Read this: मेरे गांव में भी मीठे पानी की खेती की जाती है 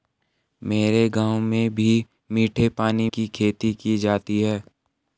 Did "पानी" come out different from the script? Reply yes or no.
no